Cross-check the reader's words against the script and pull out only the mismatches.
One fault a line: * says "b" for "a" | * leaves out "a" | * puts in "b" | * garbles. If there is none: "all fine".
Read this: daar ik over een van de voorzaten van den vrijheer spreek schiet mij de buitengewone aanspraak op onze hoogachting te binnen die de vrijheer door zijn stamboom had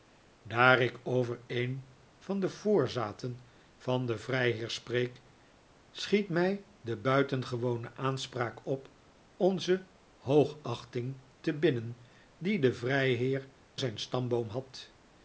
* leaves out "door"